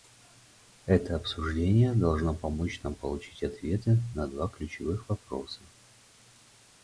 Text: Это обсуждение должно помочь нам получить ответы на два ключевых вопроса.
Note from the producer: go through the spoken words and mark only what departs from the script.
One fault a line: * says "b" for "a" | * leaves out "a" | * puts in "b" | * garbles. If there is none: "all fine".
all fine